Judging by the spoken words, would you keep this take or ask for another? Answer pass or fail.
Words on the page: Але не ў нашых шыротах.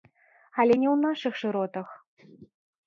pass